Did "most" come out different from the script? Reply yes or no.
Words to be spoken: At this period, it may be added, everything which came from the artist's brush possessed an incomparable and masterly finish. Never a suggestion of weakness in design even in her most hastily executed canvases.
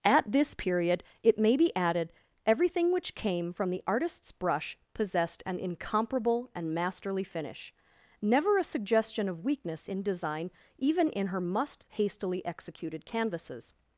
yes